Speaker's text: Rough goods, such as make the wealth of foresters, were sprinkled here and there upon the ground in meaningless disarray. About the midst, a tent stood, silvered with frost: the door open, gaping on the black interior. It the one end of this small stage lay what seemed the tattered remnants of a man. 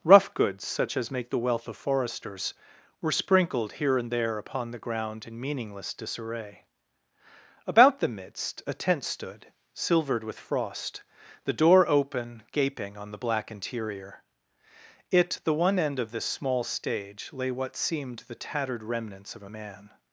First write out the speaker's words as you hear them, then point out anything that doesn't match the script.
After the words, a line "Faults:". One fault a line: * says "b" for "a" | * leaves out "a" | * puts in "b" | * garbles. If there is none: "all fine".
Rough goods, such as make the wealth of foresters, were sprinkled here and there upon the ground in meaningless disarray. About the midst, a tent stood, silvered with frost: the door open, gaping on the black interior. It the one end of this small stage lay what seemed the tattered remnants of a man.
Faults:
all fine